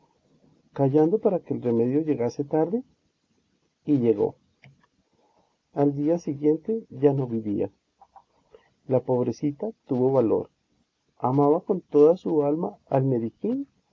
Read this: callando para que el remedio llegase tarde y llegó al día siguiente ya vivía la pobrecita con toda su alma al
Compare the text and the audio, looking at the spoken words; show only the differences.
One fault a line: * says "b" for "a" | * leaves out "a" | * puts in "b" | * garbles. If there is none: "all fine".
* puts in "no"
* puts in "tuvo valor amaba"